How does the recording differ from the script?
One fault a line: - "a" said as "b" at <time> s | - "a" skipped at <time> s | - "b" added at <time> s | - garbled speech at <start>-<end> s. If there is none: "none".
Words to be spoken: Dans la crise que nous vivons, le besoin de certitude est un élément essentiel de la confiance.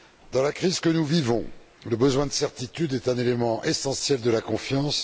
none